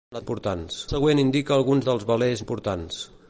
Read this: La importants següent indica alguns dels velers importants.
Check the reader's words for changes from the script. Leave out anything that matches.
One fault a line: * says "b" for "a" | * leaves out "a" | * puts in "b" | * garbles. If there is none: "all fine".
all fine